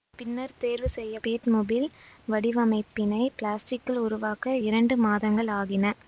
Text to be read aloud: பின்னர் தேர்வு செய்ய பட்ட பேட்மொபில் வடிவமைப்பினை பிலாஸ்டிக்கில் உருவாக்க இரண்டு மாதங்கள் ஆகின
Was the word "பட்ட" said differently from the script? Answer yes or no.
yes